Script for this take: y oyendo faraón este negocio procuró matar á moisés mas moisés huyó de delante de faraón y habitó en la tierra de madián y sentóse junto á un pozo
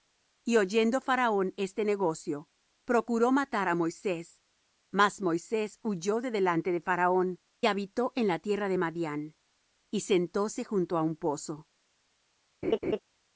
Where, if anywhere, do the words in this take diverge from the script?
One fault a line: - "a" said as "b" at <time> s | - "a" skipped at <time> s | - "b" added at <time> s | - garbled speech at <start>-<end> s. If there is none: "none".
- "y" skipped at 7.4 s